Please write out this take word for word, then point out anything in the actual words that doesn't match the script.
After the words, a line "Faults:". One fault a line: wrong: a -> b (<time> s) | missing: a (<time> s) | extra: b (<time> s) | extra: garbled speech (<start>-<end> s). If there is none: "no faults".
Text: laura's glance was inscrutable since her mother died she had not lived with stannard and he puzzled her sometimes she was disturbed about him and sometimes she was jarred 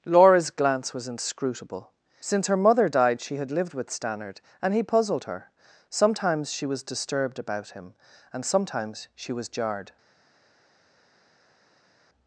laura's glance was inscrutable since her mother died she had lived with stannard and he puzzled her sometimes she was disturbed about him and sometimes she was jarred
Faults:
missing: not (3.5 s)